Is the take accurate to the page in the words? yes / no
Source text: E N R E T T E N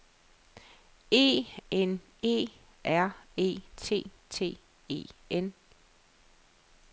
no